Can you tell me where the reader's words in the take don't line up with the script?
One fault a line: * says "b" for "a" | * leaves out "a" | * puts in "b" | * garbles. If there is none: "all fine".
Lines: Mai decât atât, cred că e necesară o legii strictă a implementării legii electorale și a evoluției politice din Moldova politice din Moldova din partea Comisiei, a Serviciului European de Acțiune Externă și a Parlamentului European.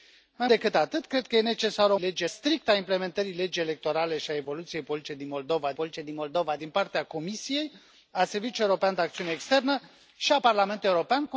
all fine